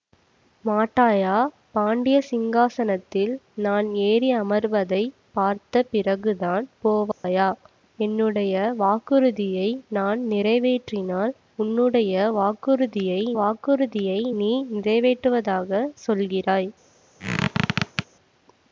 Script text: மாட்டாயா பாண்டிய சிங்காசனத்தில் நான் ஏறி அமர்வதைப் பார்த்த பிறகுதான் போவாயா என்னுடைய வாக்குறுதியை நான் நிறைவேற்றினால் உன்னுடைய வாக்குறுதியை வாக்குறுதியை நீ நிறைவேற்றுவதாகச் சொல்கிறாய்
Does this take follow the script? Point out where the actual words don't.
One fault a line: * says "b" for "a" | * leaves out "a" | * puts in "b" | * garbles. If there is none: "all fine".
all fine